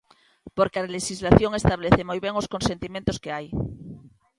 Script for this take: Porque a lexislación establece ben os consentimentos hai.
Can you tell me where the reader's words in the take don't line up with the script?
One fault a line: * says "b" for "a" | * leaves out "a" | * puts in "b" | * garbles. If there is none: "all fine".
* puts in "moi"
* puts in "que"